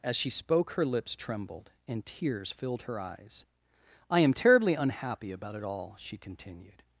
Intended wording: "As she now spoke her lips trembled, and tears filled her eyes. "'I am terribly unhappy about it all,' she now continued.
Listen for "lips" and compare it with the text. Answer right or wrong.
right